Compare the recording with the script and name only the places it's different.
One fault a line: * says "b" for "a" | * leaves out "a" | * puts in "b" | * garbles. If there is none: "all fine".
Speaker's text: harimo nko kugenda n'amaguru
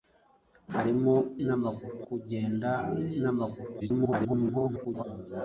* says "n'amaguru" for "nko"
* garbles